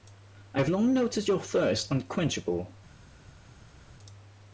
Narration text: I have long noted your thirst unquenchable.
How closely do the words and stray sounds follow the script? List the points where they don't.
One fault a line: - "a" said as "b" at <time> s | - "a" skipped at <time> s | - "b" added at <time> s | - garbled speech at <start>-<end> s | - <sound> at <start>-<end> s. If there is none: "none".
none